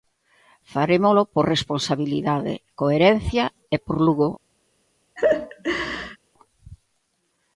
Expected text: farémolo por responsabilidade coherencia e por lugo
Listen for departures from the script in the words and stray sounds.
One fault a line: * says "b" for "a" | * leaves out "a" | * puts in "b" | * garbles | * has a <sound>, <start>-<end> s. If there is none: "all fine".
* has a laugh, 5.2-6.2 s